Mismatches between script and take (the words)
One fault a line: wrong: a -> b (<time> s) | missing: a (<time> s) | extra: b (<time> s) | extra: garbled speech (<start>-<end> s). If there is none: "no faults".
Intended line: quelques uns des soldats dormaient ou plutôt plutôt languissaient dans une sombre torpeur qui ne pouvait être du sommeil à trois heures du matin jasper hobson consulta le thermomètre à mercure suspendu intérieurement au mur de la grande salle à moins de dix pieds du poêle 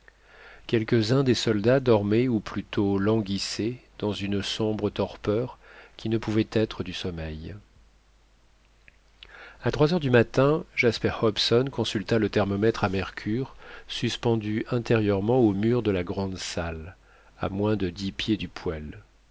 missing: plutôt (3.0 s)